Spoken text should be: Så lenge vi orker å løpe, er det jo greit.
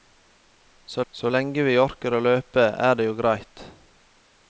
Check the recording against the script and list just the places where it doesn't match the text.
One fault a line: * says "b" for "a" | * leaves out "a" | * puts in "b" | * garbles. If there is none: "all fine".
* puts in "så"